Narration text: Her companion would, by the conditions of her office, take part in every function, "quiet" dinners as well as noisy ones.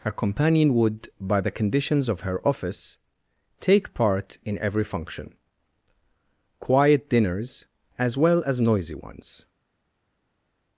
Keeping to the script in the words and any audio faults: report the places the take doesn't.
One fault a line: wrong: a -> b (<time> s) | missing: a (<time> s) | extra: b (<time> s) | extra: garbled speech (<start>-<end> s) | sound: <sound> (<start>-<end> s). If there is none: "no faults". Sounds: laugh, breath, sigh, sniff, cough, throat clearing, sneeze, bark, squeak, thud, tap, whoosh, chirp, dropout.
no faults